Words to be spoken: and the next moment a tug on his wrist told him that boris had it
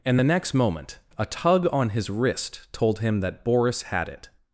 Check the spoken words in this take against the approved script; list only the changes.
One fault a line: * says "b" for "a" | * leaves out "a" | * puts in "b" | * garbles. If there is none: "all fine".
all fine